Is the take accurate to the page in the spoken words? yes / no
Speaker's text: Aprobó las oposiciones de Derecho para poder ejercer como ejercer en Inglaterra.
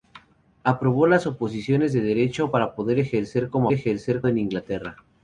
yes